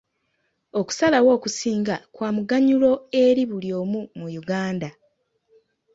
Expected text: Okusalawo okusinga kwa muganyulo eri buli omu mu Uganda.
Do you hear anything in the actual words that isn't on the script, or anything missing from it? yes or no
no